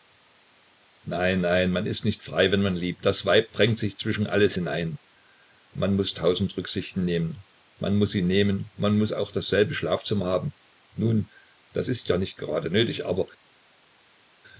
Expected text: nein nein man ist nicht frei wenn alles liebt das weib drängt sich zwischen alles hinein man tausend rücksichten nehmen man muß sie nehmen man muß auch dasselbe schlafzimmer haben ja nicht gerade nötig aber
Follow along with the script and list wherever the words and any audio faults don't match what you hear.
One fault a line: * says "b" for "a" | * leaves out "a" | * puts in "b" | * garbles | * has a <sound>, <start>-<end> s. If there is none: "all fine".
* says "man" for "alles"
* puts in "muß"
* puts in "nun das ist"